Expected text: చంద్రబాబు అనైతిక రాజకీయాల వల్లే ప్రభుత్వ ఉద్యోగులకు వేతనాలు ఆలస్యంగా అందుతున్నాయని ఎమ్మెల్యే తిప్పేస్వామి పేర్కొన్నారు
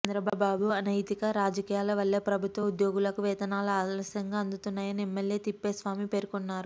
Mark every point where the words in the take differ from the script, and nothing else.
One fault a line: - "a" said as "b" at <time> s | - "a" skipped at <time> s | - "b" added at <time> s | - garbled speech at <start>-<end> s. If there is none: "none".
none